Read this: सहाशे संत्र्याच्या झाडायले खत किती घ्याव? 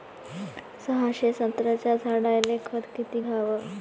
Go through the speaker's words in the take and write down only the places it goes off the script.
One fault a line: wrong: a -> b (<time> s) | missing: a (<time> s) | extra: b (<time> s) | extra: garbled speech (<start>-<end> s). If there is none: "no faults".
no faults